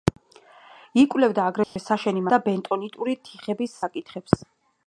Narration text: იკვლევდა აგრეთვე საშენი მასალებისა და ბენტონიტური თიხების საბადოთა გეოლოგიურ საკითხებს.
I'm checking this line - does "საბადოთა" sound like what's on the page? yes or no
no